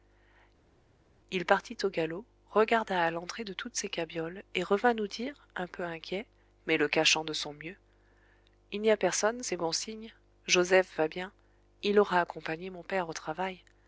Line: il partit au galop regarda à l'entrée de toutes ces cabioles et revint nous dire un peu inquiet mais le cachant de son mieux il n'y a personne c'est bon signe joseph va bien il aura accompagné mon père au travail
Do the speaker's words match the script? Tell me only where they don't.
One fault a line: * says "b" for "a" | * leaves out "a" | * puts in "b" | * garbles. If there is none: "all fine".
all fine